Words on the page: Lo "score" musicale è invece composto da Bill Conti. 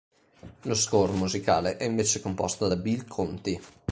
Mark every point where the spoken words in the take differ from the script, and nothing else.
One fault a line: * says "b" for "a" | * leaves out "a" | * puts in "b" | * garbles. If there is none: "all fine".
all fine